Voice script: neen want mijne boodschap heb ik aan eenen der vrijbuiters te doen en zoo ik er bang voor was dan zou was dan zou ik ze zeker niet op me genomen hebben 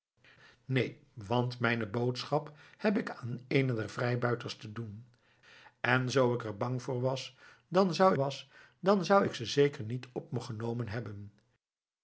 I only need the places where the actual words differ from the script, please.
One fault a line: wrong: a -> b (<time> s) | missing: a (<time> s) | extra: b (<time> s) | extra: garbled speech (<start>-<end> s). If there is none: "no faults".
no faults